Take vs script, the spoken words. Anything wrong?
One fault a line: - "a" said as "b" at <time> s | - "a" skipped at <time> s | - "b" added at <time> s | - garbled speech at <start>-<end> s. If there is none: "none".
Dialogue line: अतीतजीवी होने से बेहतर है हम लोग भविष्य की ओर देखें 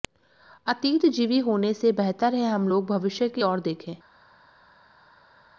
none